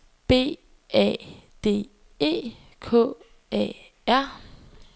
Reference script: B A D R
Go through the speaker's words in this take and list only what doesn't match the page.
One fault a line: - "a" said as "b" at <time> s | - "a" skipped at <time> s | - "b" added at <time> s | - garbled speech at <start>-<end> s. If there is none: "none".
- "E K A" added at 2.2 s